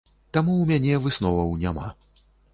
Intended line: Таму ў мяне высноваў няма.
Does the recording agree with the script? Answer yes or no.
yes